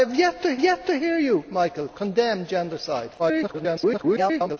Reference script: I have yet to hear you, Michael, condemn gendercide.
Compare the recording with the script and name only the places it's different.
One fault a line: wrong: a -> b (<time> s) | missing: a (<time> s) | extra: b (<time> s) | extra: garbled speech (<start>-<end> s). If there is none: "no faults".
extra: yet to (0.6 s)
extra: garbled speech (3.2-4.6 s)